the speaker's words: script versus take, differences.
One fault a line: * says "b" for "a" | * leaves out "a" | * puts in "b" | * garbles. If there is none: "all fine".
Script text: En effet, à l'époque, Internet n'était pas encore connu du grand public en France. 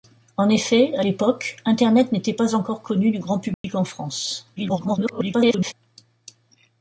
* garbles